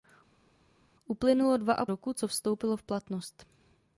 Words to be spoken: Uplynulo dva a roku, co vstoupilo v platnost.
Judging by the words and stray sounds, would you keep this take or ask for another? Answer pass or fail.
pass